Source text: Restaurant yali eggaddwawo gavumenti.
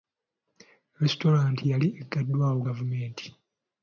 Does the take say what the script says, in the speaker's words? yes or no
yes